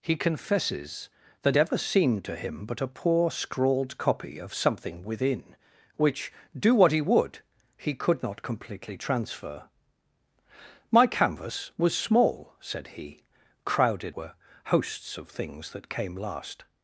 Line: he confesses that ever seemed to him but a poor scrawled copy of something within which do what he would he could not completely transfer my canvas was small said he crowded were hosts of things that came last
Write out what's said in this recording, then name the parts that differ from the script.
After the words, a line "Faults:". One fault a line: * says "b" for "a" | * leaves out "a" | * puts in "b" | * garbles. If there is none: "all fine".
he confesses that ever seemed to him but a poor scrawled copy of something within which do what he would he could not completely transfer my canvas was small said he crowded were hosts of things that came last
Faults:
all fine